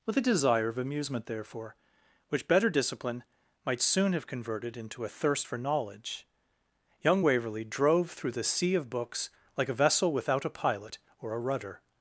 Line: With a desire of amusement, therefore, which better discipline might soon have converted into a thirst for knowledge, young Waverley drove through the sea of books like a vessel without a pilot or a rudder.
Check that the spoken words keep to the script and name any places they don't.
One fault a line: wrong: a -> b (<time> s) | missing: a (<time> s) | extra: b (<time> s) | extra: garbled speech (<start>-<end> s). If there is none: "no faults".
no faults